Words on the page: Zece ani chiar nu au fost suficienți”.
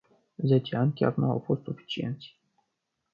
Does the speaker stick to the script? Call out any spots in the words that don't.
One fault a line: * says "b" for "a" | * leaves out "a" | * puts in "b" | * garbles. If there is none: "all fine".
all fine